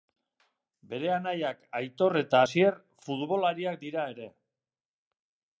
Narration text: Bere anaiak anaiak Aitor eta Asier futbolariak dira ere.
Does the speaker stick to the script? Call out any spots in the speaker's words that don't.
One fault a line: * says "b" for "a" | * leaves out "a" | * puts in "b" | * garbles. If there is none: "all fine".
* leaves out "anaiak"